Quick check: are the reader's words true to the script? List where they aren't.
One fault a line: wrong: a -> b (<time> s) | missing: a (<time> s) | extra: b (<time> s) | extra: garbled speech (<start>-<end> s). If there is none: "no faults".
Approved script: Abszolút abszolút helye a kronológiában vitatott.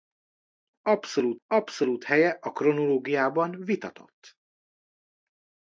no faults